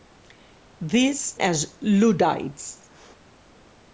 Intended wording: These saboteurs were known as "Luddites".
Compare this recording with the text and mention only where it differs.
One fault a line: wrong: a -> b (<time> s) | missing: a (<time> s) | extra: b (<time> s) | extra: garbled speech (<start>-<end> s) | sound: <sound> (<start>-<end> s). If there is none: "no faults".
missing: saboteurs were known (1.4 s)